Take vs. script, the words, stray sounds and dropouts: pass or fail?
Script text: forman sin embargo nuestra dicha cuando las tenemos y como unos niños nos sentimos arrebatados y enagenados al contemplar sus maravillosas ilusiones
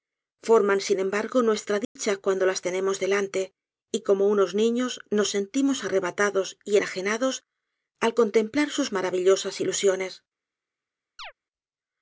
fail